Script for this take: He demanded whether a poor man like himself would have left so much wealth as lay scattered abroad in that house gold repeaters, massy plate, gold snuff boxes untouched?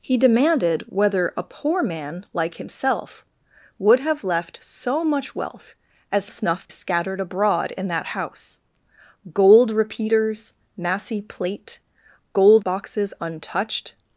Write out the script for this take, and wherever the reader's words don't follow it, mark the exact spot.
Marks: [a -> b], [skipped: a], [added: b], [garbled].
He demanded whether a poor man like himself would have left so much wealth as [lay -> snuff] scattered abroad in that house gold repeaters, massy plate, gold [skipped: snuff] boxes untouched?